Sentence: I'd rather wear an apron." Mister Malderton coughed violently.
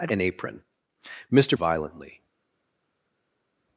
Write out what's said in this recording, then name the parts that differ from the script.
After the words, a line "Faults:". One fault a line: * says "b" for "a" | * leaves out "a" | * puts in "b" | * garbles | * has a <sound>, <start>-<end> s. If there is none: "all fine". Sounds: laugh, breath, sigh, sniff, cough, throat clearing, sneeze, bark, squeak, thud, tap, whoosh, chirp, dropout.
I'd an apron." Mister Violently.
Faults:
* leaves out "rather wear"
* leaves out "Malderton coughed"